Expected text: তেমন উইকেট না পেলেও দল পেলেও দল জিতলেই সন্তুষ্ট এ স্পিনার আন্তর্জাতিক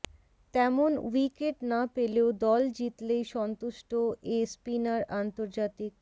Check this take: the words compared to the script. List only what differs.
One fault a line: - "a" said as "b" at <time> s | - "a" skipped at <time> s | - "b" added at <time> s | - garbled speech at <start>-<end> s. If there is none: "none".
- "পেলেও দল" skipped at 2.6 s